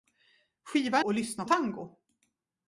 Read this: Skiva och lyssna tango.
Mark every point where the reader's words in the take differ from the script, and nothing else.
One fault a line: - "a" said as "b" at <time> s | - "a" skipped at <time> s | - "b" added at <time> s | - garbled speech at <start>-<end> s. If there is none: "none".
none